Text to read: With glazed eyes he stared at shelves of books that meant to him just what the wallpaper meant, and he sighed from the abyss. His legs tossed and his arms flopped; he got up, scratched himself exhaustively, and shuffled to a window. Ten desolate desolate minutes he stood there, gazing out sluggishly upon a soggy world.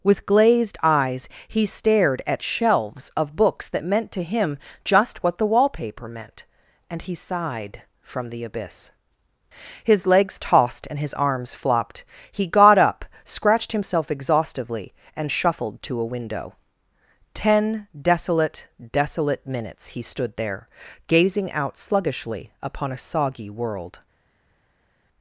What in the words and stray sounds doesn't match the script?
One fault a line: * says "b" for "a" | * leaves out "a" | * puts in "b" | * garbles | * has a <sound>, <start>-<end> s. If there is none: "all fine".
all fine